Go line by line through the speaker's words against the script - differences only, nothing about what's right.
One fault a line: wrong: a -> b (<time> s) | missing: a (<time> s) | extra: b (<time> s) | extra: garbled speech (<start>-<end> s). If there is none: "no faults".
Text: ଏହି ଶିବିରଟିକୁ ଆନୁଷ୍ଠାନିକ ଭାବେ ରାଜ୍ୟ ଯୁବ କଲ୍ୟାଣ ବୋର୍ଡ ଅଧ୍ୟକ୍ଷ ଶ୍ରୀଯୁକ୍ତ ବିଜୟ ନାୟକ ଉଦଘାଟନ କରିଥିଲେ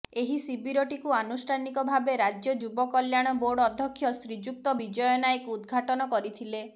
no faults